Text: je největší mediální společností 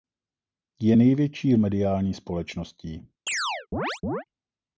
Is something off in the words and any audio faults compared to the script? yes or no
yes